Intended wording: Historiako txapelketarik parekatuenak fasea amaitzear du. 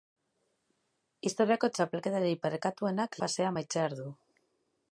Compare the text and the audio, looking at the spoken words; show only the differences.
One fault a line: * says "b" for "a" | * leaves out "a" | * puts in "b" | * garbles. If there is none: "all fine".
all fine